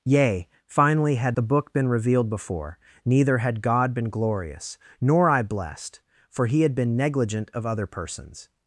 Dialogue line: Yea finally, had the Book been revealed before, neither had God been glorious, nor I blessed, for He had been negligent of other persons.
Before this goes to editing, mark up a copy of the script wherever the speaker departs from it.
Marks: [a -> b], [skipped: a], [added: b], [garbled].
Yea finally, had the Book been revealed before, neither had God been glorious, nor I blessed, for He had been negligent of other persons.